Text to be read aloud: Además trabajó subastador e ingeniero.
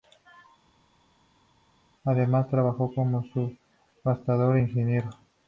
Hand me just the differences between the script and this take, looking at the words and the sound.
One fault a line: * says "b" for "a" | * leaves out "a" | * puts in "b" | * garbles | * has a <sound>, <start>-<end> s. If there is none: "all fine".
* puts in "como"